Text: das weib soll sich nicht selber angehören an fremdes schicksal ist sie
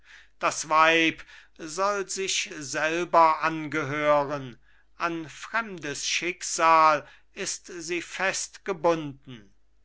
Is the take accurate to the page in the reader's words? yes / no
no